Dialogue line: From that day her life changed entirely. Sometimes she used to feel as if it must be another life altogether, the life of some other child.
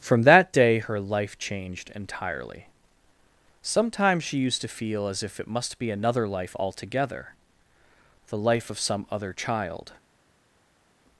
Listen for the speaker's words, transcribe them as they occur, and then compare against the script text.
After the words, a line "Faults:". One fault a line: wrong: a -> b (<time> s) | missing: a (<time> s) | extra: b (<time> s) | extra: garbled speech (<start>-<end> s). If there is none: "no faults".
From that day her life changed entirely. Sometimes she used to feel as if it must be another life altogether, the life of some other child.
Faults:
no faults